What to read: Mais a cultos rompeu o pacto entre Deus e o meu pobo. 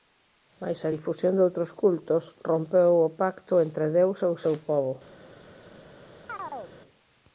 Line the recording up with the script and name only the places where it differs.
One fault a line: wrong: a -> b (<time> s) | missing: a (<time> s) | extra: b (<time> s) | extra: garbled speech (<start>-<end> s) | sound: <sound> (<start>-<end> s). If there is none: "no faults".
extra: difusión doutros (0.9 s)
wrong: meu -> seu (4.4 s)
sound: chirp (6.3-6.8 s)